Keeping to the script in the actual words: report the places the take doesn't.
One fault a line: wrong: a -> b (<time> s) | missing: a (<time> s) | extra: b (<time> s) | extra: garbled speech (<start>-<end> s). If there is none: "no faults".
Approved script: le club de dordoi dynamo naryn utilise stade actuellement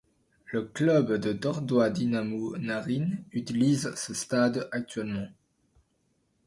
extra: ce (3.9 s)